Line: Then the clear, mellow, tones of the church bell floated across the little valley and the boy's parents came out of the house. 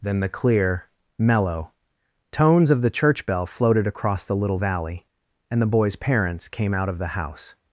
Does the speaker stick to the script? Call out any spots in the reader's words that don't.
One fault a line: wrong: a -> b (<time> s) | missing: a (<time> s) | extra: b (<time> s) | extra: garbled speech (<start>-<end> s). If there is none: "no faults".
no faults